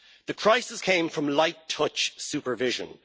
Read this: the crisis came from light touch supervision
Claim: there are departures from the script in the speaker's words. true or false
false